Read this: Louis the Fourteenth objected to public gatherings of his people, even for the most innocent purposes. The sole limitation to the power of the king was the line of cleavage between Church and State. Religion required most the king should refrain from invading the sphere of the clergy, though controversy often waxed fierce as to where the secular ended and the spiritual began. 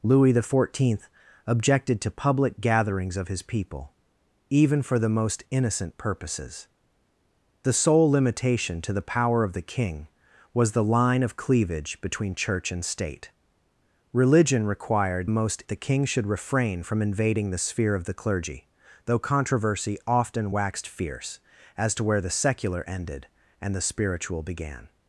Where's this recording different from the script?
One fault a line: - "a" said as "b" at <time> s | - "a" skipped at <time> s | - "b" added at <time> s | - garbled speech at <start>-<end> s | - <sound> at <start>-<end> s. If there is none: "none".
none